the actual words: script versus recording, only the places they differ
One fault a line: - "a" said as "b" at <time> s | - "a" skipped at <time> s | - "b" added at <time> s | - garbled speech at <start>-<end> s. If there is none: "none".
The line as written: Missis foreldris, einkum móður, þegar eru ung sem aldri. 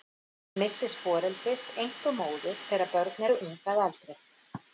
- "börn" added at 2.9 s
- "sem" said as "að" at 3.8 s